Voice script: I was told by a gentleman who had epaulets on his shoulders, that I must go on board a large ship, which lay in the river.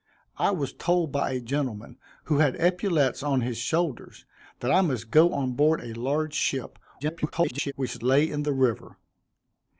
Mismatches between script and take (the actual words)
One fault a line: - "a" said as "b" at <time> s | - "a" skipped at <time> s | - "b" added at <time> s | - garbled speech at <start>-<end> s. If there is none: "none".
- garbled speech at 7.0-7.7 s